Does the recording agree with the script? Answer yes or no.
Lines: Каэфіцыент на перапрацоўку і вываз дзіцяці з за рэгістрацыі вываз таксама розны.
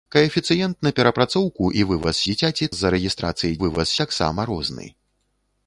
yes